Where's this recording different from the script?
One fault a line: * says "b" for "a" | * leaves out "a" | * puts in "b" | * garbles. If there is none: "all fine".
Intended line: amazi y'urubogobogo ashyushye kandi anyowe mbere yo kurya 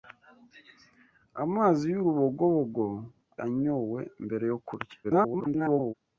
* leaves out "ashyushye kandi"
* garbles